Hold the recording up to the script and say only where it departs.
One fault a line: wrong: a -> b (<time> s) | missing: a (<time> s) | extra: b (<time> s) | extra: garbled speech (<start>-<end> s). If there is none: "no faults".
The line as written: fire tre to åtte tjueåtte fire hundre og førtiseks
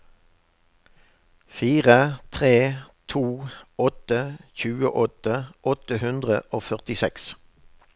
wrong: fire -> åtte (5.7 s)